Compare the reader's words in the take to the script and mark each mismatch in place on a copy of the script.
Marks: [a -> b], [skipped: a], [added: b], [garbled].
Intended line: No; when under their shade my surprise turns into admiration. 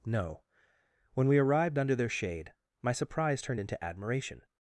No; when [added: we arrived] under their shade my surprise [turns -> turned] into admiration.